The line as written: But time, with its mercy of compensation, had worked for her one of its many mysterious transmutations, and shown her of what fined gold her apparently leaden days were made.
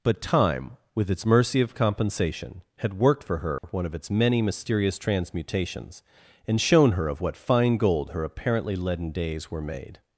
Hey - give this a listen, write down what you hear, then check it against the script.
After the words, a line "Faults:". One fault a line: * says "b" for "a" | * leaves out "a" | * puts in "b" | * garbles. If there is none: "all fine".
But time, with its mercy of compensation, had worked for her one of its many mysterious transmutations, and shown her of what fine gold her apparently leaden days were made.
Faults:
* says "fine" for "fined"